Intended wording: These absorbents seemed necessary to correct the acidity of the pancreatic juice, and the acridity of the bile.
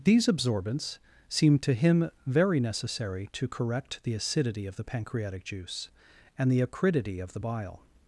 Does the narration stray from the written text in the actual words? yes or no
yes